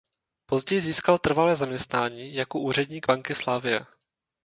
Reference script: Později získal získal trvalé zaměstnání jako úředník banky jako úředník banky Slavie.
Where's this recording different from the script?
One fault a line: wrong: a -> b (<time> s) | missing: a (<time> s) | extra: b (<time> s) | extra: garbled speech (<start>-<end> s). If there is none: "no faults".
missing: získal (1.2 s)
missing: jako úředník banky (3.3 s)